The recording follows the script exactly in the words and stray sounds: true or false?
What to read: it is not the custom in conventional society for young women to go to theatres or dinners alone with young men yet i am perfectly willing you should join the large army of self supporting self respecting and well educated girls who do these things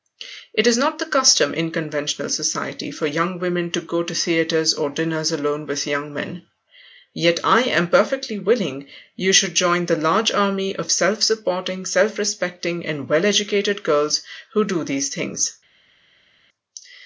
true